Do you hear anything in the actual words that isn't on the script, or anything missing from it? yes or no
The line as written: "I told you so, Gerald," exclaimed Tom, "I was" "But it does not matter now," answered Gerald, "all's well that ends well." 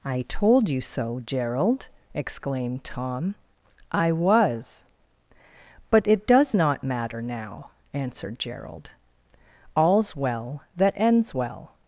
no